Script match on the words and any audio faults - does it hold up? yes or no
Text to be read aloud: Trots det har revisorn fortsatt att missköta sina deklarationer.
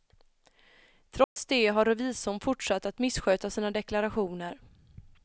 no